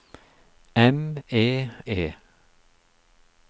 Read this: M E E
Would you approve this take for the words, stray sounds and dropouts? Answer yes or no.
yes